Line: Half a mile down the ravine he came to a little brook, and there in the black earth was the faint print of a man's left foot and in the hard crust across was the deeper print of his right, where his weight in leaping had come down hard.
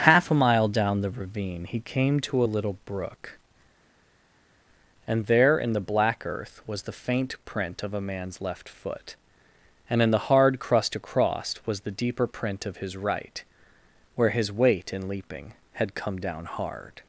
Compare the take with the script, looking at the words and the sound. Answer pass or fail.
pass